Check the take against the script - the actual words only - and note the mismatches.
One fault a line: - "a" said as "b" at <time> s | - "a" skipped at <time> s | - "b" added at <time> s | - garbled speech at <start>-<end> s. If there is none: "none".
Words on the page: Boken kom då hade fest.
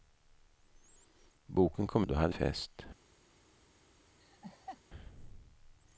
none